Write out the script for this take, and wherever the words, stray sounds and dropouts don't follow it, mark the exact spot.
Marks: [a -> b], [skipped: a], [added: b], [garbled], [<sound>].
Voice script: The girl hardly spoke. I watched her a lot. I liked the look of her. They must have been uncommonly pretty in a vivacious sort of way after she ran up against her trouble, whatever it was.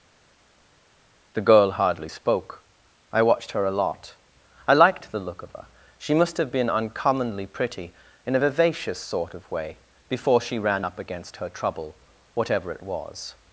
The girl hardly spoke. I watched her a lot. I liked the look of her. [They -> She] must have been uncommonly pretty in a vivacious sort of way [after -> before] she ran up against her trouble, whatever it was.